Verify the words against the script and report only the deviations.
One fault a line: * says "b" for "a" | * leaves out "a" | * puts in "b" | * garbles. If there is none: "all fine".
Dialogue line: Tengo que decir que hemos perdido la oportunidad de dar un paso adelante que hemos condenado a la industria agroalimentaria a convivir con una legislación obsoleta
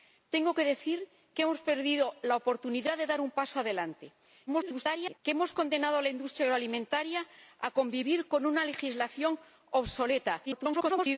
* garbles
* garbles